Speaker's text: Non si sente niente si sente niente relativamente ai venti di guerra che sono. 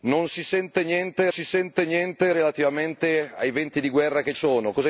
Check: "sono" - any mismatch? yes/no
no